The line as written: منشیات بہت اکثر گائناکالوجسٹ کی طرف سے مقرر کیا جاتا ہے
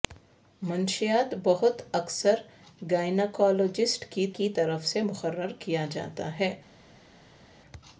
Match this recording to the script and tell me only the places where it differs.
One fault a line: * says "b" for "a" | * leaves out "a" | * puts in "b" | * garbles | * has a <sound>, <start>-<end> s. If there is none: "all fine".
* puts in "کی"